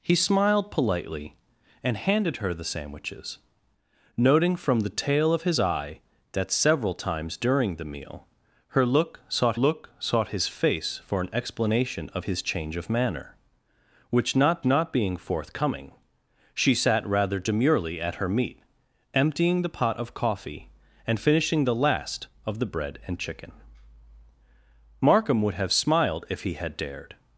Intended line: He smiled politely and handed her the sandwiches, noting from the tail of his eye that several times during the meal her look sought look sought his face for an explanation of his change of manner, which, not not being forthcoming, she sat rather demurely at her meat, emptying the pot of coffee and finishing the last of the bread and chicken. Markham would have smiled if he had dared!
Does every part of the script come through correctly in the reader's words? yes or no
yes